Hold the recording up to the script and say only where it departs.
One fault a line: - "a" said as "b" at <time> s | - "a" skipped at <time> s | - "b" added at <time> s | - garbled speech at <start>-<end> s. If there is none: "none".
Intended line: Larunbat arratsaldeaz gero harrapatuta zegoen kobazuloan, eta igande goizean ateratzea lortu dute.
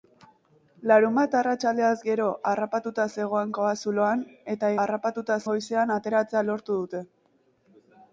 - "igande" said as "harrapatuta" at 4.8 s